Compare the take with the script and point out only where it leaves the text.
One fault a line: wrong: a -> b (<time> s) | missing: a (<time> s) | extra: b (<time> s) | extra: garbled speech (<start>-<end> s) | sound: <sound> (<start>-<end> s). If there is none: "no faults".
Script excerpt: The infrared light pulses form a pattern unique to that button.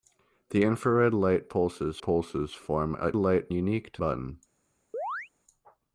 extra: pulses (2.0 s)
wrong: pattern -> light (3.1 s)
missing: that (4.0 s)
sound: chirp (4.9-5.3 s)